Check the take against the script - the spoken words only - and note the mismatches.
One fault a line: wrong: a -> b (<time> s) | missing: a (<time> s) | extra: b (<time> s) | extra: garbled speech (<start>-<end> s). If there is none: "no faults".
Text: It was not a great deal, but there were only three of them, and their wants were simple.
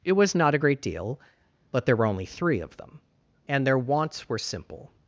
no faults